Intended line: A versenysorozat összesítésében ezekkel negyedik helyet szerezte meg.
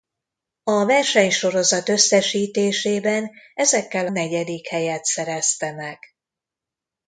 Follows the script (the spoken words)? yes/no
yes